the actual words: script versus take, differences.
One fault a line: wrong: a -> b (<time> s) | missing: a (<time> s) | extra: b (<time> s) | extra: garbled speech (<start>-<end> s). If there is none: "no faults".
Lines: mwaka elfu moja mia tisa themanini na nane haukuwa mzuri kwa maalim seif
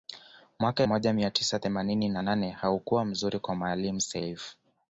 missing: elfu (0.8 s)